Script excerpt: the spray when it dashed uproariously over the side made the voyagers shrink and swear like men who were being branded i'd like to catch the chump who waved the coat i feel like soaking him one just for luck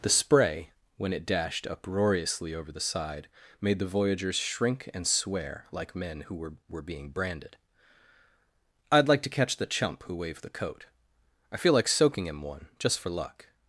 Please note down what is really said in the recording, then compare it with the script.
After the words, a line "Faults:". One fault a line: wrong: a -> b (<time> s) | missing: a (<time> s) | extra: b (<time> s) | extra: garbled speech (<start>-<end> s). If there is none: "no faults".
the spray when it dashed uproariously over the side made the voyagers shrink and swear like men who were were being branded i'd like to catch the chump who waved the coat i feel like soaking him one just for luck
Faults:
extra: were (6.7 s)